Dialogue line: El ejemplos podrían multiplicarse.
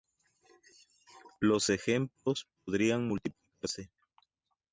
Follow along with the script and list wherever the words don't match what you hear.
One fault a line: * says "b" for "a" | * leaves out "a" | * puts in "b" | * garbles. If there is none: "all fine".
* says "Los" for "El"